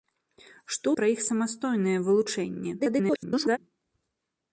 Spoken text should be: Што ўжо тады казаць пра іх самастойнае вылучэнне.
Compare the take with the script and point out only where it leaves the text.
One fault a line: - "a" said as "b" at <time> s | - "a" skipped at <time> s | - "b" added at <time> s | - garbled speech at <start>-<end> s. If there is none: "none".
- "ўжо тады казаць" skipped at 0.9 s
- garbled speech at 2.8-3.6 s